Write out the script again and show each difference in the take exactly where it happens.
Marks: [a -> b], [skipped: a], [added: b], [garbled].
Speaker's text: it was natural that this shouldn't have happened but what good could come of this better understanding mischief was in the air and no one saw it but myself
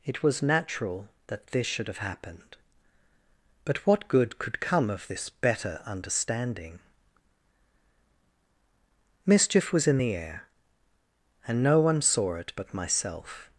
it was natural that this [shouldn't -> should] have happened but what good could come of this better understanding mischief was in the air and no one saw it but myself